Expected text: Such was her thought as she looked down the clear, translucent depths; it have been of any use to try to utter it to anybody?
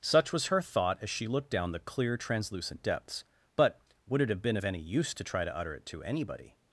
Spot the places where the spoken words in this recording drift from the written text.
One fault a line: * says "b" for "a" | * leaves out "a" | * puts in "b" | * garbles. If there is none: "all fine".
* puts in "but would"